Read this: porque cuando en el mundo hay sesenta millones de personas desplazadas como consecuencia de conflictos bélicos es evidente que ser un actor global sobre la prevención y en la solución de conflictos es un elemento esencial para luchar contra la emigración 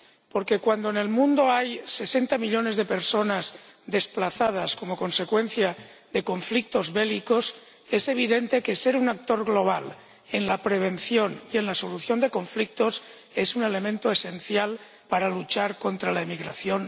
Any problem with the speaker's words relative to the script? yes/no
yes